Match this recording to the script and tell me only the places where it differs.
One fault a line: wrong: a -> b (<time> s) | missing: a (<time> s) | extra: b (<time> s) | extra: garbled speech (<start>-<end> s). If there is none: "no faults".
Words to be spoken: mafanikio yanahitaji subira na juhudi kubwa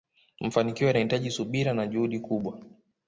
no faults